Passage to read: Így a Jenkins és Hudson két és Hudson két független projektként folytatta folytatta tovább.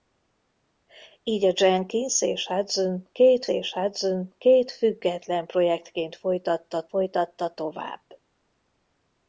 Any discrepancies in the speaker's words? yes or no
no